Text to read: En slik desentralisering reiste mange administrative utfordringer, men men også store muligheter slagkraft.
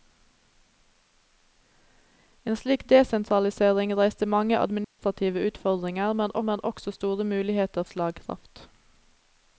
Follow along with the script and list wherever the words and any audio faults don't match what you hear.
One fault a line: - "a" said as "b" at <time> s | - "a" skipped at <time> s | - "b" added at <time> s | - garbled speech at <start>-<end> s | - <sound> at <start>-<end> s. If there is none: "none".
- dropout at 4.8-5.0 s